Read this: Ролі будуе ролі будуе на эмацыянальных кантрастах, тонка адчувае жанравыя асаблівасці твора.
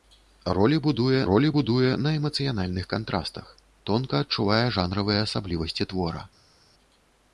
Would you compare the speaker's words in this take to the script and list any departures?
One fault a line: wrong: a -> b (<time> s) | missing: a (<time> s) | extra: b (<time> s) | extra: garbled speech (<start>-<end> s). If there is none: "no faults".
no faults